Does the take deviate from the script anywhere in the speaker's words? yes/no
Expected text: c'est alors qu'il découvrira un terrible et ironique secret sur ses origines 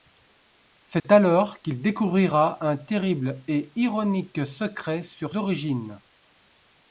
yes